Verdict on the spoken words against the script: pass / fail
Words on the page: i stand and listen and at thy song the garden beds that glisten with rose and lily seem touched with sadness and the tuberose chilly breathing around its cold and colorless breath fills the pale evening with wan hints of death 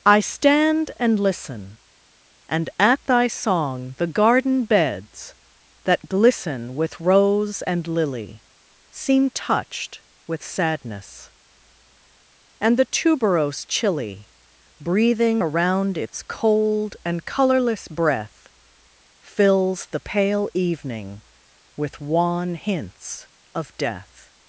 pass